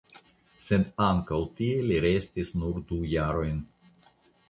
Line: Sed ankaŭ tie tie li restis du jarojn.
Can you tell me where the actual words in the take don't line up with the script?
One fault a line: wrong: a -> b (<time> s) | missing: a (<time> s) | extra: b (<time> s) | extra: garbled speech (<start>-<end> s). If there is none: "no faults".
missing: tie (1.8 s)
extra: nur (2.6 s)